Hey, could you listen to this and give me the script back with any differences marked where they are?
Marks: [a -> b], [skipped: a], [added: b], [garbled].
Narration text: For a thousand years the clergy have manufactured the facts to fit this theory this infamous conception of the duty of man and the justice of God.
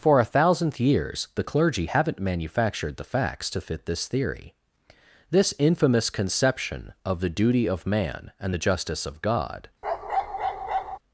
For a [thousand -> thousandth] years the clergy [have -> haven't] manufactured the facts to fit this theory this infamous conception of the duty of man and the justice of God.